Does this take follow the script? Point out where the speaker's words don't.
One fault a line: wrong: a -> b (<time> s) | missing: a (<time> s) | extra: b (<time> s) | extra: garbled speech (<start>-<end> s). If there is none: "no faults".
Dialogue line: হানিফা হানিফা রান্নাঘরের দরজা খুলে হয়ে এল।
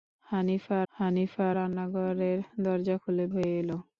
no faults